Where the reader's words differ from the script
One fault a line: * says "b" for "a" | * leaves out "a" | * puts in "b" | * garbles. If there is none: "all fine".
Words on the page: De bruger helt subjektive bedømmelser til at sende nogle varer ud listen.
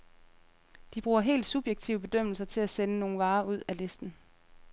* puts in "af"